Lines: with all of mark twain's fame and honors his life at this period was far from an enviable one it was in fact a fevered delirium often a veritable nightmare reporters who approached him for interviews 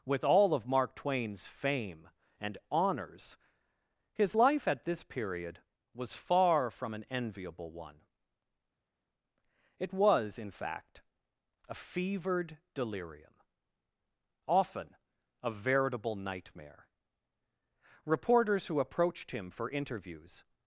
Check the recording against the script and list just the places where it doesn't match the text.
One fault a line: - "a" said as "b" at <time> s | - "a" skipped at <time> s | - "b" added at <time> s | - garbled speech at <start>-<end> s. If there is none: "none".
none